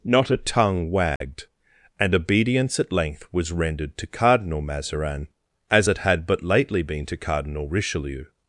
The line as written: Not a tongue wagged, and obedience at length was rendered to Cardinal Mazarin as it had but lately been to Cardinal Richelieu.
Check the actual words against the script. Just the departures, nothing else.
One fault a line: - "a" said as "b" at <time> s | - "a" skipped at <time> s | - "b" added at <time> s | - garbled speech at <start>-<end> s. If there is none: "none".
none